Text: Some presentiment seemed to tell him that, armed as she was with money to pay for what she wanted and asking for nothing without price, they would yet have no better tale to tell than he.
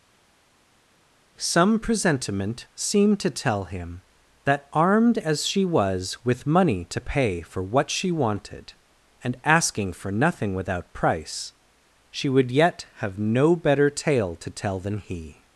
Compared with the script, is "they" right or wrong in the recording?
wrong